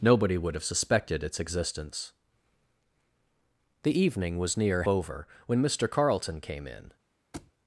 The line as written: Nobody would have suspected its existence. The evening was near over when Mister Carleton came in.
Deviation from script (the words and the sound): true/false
true